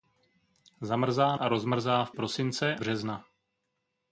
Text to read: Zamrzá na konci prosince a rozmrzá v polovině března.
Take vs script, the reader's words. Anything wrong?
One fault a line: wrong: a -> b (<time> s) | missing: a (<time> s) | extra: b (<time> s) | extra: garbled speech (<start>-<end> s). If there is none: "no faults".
missing: na konci prosince (1.4 s)
wrong: polovině -> prosince (2.1 s)